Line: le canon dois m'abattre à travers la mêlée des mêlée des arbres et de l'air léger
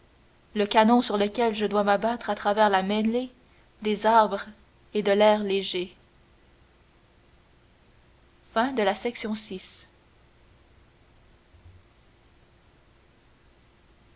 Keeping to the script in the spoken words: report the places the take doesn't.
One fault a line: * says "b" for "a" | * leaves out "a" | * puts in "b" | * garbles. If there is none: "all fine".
* puts in "sur lequel je"
* leaves out "mêlée des"